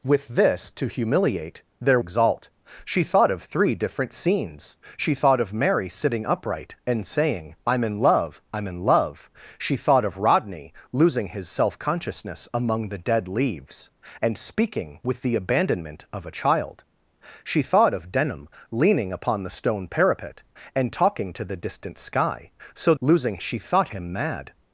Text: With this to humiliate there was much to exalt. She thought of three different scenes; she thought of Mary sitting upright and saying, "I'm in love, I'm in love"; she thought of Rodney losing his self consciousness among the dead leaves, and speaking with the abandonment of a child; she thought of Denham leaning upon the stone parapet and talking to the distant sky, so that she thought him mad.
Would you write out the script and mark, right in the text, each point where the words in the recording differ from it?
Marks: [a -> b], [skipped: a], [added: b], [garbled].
With this to humiliate there [skipped: was much to] exalt. She thought of three different scenes; she thought of Mary sitting upright and saying, "I'm in love, I'm in love"; she thought of Rodney losing his self consciousness among the dead leaves, and speaking with the abandonment of a child; she thought of Denham leaning upon the stone parapet and talking to the distant sky, so [that -> losing] she thought him mad.